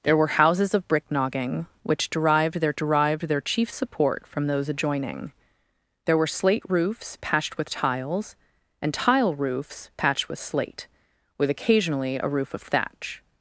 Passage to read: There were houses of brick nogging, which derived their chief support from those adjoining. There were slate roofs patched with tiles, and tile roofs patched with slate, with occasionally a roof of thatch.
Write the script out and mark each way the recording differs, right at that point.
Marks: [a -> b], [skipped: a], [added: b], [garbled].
There were houses of brick nogging, which derived their [added: derived their] chief support from those adjoining. There were slate roofs patched with tiles, and tile roofs patched with slate, with occasionally a roof of thatch.